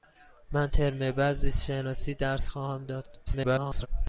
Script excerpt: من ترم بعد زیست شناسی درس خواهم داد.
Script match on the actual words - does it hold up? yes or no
no